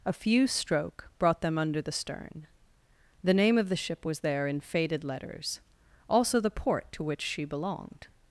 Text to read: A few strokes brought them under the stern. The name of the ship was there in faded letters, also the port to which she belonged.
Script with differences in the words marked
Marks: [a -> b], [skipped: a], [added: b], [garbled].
A few [strokes -> stroke] brought them under the stern. The name of the ship was there in faded letters, also the port to which she belonged.